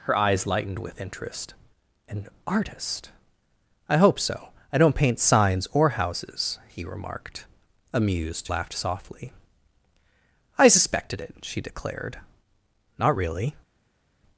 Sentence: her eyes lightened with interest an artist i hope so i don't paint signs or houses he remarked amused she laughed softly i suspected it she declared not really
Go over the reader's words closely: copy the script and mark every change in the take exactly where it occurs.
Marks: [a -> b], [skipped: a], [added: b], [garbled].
her eyes lightened with interest an artist i hope so i don't paint signs or houses he remarked amused [skipped: she] laughed softly i suspected it she declared not really